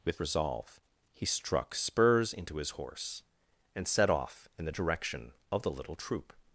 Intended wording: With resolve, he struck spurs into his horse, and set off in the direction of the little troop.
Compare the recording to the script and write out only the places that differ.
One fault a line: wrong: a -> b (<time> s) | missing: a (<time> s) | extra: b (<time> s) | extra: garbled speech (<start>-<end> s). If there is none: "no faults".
no faults